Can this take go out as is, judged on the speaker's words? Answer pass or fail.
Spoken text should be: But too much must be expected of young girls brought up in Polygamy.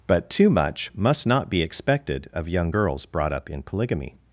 fail